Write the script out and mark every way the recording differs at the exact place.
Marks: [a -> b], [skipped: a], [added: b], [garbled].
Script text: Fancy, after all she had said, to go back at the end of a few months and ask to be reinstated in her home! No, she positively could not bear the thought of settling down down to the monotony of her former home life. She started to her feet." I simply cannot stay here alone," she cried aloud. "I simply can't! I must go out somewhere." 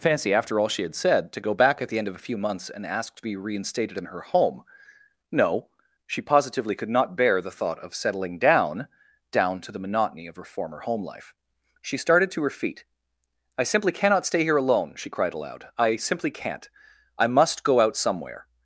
Fancy, after all she had said, to go back at the end of a few months and ask to be reinstated in her home! No, she positively could not bear the thought of settling down down to the monotony of her former home life. She started to her feet." I simply cannot stay here alone," she cried aloud. "I simply can't! I must go out somewhere."